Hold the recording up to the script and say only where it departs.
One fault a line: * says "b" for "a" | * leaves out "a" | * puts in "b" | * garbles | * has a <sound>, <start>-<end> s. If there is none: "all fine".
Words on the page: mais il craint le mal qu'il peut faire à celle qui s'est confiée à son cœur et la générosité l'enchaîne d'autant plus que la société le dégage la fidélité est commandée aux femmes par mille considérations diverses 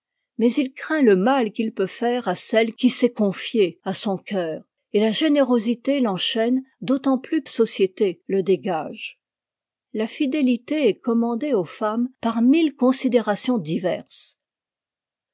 * leaves out "que la"